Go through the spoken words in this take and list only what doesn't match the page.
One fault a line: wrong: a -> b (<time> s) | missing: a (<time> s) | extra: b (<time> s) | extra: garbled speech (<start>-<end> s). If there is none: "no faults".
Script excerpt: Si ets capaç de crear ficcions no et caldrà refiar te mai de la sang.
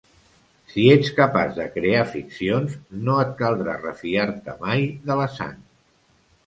no faults